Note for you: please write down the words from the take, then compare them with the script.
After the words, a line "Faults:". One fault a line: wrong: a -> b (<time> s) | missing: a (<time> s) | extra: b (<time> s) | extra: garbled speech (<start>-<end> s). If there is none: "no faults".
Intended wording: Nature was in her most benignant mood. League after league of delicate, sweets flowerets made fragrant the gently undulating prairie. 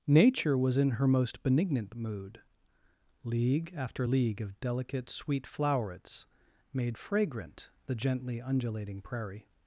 Nature was in her most benignant mood. League after league of delicate, sweet flowerets made fragrant the gently undulating prairie.
Faults:
wrong: sweets -> sweet (5.1 s)